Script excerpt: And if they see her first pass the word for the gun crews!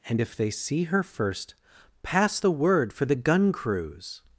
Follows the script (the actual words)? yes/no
yes